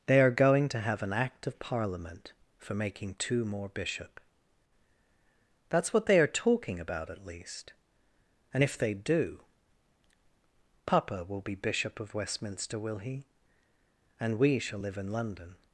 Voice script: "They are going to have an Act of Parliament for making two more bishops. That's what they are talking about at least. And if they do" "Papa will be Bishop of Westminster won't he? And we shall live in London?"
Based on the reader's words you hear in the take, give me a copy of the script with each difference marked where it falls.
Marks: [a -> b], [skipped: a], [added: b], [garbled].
"They are going to have an Act of Parliament for making two more [bishops. -> bishop] That's what they are talking about at least. And if they do" "Papa will be Bishop of Westminster [won't -> will] he? And we shall live in London?"